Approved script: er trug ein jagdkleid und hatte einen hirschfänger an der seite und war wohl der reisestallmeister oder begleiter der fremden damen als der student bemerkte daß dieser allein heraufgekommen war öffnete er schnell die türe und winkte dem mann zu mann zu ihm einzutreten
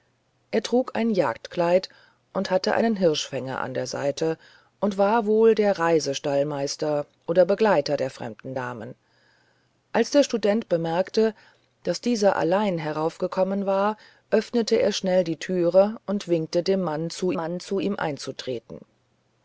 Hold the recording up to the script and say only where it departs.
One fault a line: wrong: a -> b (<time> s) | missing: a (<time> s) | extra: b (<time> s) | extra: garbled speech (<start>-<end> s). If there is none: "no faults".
no faults